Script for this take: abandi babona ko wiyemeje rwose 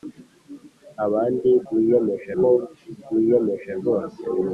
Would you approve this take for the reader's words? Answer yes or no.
no